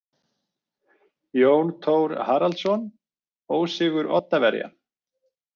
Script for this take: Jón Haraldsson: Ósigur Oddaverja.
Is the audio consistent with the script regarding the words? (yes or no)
no